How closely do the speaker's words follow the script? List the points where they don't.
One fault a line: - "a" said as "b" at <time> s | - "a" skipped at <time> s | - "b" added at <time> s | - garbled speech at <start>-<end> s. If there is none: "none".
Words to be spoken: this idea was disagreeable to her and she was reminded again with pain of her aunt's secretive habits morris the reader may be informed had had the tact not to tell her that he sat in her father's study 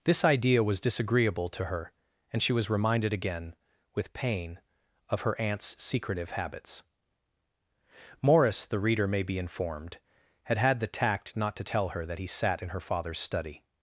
none